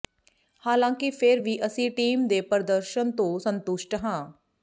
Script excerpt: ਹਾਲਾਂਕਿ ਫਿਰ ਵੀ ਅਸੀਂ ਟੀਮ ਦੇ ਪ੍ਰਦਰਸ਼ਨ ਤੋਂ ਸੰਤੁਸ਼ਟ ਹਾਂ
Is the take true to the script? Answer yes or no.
yes